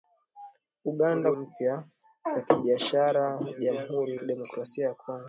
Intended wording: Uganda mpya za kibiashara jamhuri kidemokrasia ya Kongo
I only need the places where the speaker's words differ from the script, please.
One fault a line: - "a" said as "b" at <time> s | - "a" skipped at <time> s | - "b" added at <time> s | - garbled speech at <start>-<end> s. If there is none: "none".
none